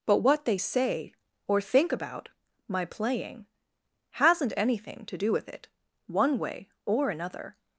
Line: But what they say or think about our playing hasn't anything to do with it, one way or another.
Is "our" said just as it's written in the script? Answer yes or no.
no